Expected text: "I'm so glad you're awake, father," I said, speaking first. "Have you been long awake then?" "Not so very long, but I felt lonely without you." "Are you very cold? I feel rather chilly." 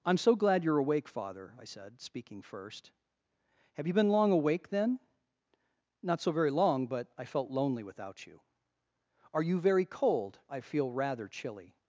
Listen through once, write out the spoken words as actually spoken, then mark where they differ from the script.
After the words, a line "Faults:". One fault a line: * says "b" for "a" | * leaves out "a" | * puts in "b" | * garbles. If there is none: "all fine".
"I'm so glad you're awake, father," I said, speaking first. "Have you been long awake then?" "Not so very long, but I felt lonely without you." "Are you very cold? I feel rather chilly."
Faults:
all fine